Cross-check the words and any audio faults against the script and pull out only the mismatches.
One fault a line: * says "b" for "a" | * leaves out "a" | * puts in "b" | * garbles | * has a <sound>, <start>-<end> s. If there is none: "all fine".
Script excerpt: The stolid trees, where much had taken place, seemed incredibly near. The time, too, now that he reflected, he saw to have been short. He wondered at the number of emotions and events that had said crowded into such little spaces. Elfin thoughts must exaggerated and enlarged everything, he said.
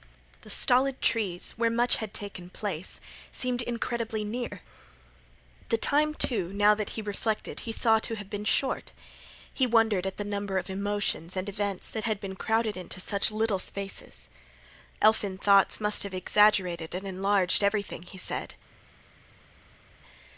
* says "been" for "said"
* puts in "have"